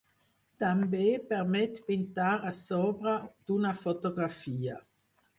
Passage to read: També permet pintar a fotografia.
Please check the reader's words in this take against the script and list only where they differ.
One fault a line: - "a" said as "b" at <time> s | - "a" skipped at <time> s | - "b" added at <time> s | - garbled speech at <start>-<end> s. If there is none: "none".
- "sobre d'una" added at 2.6 s